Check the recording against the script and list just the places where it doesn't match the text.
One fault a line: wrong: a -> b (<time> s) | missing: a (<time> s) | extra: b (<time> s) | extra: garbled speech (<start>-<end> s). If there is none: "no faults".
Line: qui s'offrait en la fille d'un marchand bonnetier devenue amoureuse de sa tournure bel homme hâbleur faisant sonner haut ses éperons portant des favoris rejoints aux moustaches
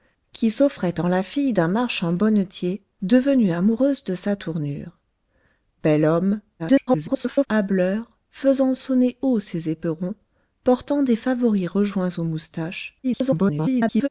extra: garbled speech (6.6-7.5 s)
extra: garbled speech (13.0-14.1 s)